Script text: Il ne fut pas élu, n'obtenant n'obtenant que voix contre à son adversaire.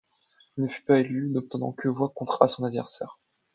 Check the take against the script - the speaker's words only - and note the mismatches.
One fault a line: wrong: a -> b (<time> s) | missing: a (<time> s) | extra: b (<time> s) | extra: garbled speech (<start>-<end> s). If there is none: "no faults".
missing: n'obtenant (1.7 s)